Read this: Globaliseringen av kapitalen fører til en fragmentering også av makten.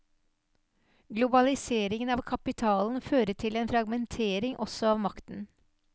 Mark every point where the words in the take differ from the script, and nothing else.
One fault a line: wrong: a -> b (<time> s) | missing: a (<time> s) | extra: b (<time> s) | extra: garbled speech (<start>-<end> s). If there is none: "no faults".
no faults